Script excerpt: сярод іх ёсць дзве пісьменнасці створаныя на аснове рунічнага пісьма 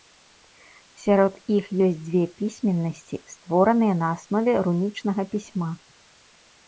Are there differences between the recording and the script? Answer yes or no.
no